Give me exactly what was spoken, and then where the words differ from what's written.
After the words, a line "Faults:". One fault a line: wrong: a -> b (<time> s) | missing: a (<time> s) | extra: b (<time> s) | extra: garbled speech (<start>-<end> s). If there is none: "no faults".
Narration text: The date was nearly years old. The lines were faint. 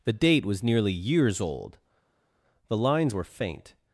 The date was nearly years old. The lines were faint.
Faults:
no faults